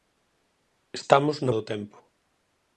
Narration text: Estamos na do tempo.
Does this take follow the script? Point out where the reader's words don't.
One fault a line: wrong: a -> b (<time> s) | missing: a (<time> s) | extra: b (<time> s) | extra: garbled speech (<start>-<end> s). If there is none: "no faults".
no faults